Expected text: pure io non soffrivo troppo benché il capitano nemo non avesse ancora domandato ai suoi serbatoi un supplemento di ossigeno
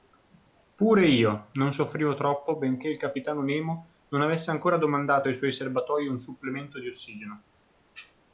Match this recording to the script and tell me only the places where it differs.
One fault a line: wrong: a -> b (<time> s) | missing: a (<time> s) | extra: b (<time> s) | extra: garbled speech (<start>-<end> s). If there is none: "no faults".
no faults